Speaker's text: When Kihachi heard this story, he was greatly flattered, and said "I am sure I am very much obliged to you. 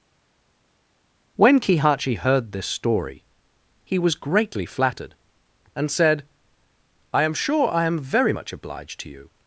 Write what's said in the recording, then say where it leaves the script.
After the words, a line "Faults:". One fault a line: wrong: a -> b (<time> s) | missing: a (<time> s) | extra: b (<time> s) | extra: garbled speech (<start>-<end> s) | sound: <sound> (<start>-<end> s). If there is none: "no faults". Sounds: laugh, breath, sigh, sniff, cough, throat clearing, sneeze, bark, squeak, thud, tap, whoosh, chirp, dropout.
When Kihachi heard this story, he was greatly flattered, and said "I am sure I am very much obliged to you.
Faults:
no faults